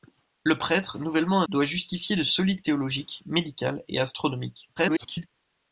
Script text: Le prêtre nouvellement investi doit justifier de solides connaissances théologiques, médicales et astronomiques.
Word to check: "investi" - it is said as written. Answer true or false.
false